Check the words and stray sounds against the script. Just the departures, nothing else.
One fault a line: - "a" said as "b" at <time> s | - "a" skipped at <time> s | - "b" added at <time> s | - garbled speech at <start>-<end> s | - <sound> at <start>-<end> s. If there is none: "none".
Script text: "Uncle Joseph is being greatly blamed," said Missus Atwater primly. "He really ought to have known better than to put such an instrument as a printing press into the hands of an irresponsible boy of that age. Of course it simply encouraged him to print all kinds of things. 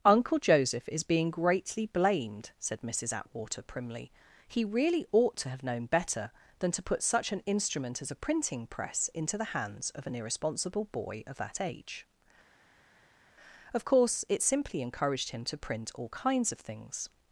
none